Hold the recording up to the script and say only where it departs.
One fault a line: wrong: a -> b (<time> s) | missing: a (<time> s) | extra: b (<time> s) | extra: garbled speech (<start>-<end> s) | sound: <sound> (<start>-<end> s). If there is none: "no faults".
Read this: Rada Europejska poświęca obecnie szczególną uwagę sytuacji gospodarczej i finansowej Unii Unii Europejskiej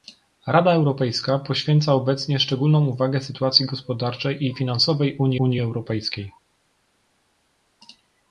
no faults